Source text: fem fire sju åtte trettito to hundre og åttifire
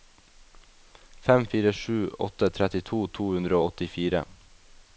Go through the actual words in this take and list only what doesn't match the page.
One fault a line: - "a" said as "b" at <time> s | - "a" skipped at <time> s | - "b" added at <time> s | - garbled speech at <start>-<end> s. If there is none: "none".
none